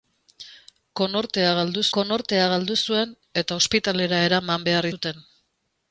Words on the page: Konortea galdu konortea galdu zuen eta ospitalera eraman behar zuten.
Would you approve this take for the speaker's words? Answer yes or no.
yes